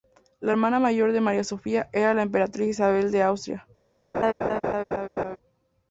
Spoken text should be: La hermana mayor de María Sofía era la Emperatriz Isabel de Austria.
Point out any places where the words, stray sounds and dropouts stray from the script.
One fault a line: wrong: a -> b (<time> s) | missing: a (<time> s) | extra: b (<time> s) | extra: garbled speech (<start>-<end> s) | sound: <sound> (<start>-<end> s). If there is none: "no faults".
sound: laugh (4.1-5.4 s)